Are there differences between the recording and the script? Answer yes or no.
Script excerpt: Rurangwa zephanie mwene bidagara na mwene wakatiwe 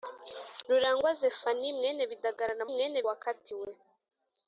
no